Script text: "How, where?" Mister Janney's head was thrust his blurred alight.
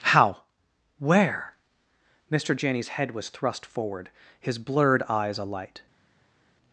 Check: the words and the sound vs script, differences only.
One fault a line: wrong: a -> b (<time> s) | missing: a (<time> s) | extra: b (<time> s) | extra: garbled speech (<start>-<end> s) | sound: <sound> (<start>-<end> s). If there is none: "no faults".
extra: forward (3.6 s)
extra: eyes (5.1 s)